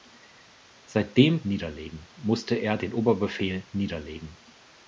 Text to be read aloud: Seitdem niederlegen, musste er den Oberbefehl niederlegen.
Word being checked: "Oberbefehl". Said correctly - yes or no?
yes